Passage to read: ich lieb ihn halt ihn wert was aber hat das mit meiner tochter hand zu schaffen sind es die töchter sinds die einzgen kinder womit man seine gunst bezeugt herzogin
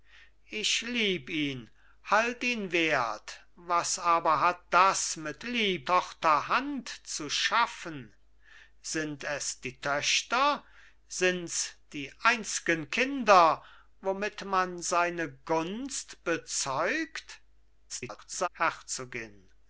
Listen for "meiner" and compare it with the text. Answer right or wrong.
wrong